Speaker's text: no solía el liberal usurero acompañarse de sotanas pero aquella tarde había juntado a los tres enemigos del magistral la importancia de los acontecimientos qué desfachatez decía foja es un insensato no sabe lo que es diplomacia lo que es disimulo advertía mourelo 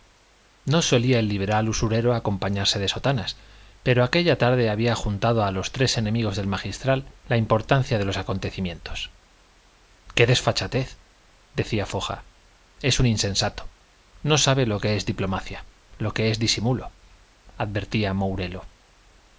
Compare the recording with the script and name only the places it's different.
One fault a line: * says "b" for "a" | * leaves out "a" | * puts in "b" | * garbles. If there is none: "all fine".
all fine